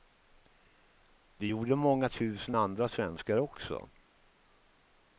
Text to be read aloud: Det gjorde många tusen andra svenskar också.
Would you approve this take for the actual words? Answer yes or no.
yes